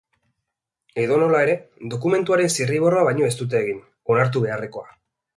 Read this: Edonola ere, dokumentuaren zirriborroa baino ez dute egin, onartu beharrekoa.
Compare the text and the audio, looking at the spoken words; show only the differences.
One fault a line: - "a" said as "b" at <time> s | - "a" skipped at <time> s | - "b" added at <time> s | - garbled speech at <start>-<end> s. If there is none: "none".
none